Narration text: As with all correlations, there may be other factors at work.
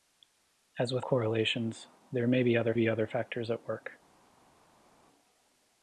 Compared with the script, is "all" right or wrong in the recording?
wrong